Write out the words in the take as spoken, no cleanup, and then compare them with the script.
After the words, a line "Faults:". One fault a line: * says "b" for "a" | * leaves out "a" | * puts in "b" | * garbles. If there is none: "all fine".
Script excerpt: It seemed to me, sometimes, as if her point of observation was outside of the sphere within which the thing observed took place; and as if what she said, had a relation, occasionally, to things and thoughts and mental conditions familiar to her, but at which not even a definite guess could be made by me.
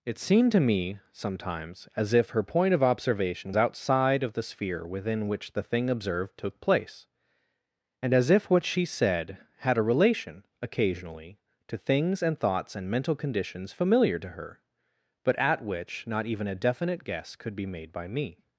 It seemed to me, sometimes, as if her point of observation outside of the sphere within which the thing observed took place; and as if what she said, had a relation, occasionally, to things and thoughts and mental conditions familiar to her, but at which not even a definite guess could be made by me.
Faults:
* leaves out "was"